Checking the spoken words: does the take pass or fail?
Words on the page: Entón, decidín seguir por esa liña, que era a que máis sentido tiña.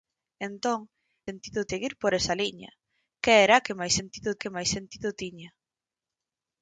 fail